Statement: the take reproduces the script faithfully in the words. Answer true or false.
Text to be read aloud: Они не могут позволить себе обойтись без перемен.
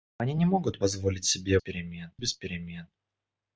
false